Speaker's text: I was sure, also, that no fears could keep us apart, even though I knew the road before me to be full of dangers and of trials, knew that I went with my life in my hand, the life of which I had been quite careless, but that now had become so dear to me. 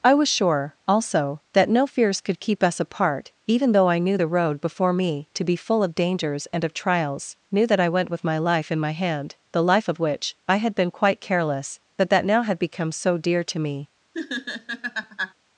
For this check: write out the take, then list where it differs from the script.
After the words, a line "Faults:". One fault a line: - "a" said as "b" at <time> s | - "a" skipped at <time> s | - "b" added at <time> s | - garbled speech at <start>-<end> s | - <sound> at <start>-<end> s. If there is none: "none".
I was sure, also, that no fears could keep us apart, even though I knew the road before me to be full of dangers and of trials, knew that I went with my life in my hand, the life of which I had been quite careless, but that now had become so dear to me.
Faults:
- laugh at 14.1-15.3 s